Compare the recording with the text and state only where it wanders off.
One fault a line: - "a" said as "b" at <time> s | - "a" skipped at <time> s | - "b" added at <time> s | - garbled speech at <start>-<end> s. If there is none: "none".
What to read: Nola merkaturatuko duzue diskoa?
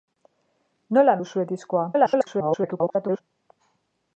- "merkaturatuko" skipped at 1.1 s
- garbled speech at 1.9-3.2 s